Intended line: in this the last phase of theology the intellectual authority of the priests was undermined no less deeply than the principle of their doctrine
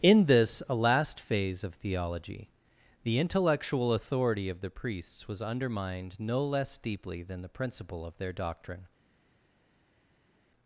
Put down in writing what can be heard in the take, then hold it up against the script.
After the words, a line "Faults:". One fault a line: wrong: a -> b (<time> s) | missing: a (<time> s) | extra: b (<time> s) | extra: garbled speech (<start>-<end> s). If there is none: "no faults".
in this a last phase of theology the intellectual authority of the priests was undermined no less deeply than the principle of their doctrine
Faults:
wrong: the -> a (0.7 s)